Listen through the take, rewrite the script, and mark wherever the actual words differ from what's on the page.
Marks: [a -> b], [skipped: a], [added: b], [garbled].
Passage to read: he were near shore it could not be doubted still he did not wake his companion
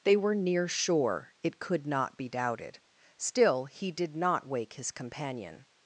[he -> they] were near shore it could not be doubted still he did not wake his companion